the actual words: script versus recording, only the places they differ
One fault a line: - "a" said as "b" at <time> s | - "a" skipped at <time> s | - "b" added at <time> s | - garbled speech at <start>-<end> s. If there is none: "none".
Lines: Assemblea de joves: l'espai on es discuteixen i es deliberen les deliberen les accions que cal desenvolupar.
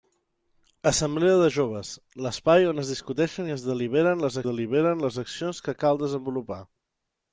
none